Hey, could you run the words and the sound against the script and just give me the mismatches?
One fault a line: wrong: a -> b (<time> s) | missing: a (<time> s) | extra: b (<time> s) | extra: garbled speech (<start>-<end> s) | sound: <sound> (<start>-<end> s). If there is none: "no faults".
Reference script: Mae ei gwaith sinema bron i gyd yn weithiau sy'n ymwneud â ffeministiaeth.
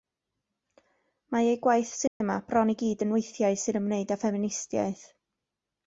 sound: dropout (2.1-2.2 s)